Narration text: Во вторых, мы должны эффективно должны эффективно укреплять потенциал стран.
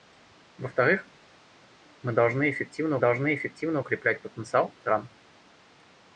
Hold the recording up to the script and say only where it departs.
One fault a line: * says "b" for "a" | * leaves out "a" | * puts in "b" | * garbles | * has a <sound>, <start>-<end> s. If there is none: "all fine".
all fine